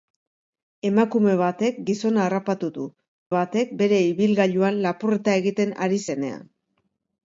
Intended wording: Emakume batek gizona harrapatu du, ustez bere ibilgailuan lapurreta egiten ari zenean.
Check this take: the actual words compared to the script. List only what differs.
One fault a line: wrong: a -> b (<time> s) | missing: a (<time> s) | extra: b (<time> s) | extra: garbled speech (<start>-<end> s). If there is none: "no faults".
wrong: ustez -> batek (3.3 s)